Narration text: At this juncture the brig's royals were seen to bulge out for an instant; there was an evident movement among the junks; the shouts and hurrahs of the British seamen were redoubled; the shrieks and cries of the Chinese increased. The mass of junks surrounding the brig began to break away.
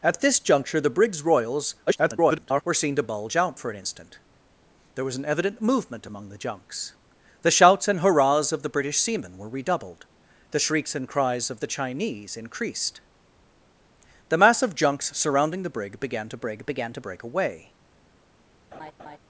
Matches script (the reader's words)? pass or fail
fail